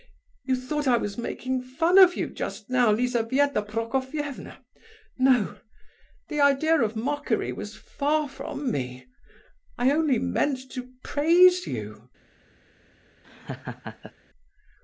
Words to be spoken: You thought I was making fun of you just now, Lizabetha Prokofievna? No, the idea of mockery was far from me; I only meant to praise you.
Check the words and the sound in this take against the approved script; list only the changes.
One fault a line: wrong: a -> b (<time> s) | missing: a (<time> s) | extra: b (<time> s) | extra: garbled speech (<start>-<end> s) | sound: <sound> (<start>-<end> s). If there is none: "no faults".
sound: laugh (13.2-14.1 s)